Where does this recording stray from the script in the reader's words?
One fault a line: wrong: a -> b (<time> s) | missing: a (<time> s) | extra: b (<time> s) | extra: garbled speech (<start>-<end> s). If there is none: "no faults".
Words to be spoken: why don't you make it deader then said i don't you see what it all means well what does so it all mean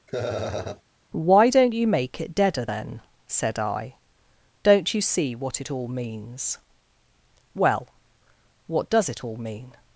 missing: so (9.1 s)